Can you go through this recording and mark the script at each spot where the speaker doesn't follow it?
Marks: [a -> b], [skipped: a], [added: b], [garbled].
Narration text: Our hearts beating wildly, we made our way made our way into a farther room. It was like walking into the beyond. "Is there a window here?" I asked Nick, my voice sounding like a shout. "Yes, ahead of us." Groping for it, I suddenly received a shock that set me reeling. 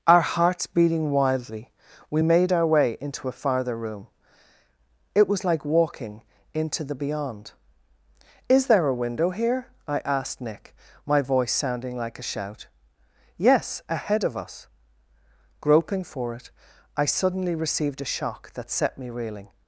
Our hearts beating wildly, we made our way [skipped: made our way] into a farther room. It was like walking into the beyond. "Is there a window here?" I asked Nick, my voice sounding like a shout. "Yes, ahead of us." Groping for it, I suddenly received a shock that set me reeling.